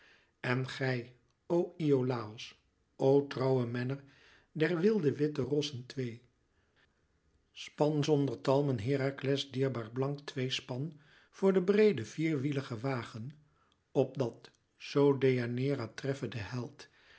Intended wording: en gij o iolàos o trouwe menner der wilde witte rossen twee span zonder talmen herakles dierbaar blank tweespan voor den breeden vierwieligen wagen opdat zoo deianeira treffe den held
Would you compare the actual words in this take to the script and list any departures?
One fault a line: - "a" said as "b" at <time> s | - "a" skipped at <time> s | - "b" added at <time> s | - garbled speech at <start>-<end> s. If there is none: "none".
none